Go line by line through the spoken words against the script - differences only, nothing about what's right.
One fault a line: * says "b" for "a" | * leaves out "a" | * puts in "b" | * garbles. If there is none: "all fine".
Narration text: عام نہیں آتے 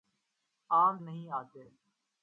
all fine